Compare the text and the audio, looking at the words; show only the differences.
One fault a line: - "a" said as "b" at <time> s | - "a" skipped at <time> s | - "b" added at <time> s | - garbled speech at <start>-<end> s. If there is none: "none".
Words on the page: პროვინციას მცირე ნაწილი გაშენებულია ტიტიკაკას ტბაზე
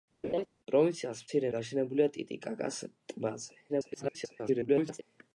- "ნაწილი" skipped at 1.5 s
- garbled speech at 3.7-5.0 s